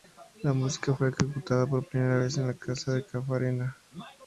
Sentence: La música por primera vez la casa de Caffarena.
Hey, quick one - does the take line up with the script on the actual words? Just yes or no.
no